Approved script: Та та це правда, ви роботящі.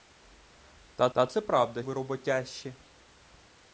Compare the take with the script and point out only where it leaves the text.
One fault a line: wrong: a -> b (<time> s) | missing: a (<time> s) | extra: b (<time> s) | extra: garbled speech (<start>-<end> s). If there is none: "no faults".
no faults